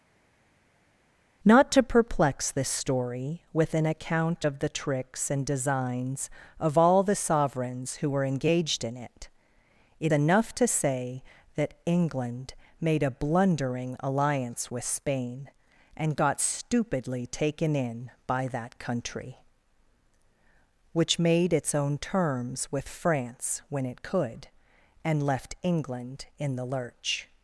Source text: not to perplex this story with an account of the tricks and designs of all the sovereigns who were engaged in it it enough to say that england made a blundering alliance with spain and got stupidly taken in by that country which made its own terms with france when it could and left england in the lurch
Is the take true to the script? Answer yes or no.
yes